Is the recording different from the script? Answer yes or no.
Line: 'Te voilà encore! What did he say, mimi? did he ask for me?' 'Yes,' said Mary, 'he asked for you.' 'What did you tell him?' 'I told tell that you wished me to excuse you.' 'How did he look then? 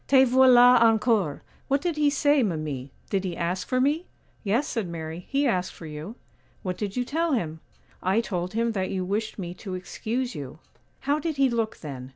yes